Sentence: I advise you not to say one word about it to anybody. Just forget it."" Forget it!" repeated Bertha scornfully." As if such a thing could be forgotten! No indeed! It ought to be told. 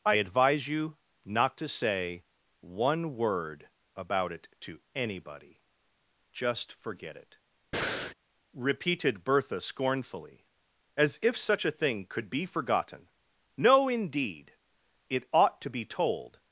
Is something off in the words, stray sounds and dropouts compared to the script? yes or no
yes